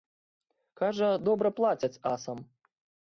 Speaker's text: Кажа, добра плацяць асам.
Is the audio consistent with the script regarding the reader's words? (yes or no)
yes